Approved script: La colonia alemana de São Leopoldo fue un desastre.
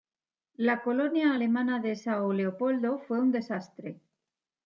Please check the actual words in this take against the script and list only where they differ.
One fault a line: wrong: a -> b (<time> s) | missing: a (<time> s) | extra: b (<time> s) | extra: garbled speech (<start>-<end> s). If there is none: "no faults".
no faults